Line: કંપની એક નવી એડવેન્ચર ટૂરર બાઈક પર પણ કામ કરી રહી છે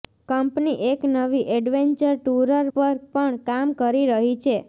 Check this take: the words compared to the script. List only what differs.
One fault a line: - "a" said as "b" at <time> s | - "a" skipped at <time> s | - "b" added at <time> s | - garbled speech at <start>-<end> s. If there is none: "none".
- "બાઈક" skipped at 2.7 s